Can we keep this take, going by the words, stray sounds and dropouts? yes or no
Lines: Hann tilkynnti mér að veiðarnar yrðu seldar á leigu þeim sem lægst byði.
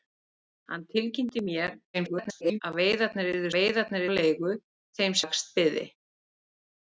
no